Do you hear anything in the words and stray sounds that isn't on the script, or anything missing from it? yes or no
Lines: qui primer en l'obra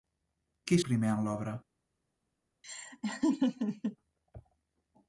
yes